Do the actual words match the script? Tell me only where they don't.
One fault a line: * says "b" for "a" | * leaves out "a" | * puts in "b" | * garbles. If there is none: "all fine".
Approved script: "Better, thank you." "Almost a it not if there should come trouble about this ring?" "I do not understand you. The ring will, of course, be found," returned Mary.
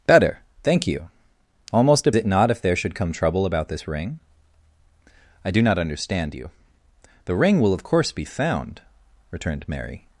all fine